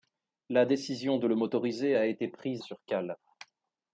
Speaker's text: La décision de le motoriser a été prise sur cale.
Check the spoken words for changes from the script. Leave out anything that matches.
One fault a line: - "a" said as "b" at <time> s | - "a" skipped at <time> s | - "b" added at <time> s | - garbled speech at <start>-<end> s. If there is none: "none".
none